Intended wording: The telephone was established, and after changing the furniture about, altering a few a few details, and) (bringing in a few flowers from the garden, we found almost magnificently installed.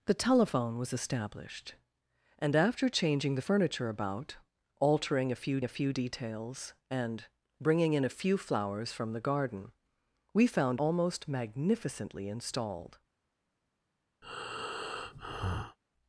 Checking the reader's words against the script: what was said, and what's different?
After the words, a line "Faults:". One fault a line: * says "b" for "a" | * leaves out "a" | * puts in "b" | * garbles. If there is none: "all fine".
The telephone was established, and after changing the furniture about, altering a few a few details, and) (bringing in a few flowers from the garden, we found almost magnificently installed.
Faults:
all fine